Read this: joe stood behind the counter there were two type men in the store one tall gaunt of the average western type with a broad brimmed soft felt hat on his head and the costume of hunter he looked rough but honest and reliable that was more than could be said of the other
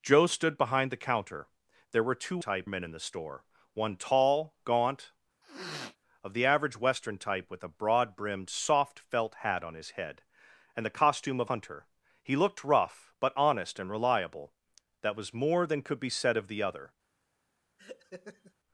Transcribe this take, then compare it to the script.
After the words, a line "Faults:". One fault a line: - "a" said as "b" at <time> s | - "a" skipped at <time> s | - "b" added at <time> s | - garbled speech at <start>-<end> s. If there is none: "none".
joe stood behind the counter there were two type men in the store one tall gaunt of the average western type with a broad brimmed soft felt hat on his head and the costume of hunter he looked rough but honest and reliable that was more than could be said of the other
Faults:
none